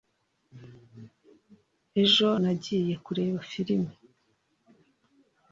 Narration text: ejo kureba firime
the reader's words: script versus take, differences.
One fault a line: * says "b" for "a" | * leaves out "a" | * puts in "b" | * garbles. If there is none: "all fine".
* puts in "nagiye"